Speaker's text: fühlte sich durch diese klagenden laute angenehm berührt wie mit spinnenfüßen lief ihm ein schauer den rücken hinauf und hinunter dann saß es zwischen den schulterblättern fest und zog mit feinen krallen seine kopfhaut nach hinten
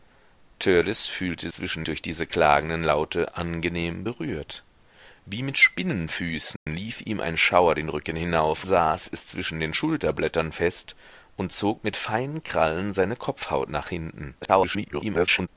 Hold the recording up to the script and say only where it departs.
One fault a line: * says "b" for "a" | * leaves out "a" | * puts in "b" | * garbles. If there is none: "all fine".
* says "zwischen" for "sich"
* leaves out "und hinunter dann"
* garbles